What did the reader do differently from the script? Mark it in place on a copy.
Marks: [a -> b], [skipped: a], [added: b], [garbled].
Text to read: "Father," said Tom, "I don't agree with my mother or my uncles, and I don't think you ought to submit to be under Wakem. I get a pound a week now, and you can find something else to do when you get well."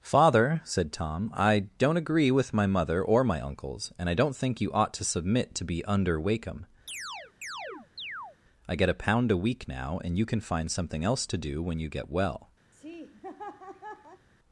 "Father," said Tom, "I don't agree with my mother or my uncles, and I don't think you ought to submit to be under Wakem. I get a pound a week now, and you can find something else to do when you get well."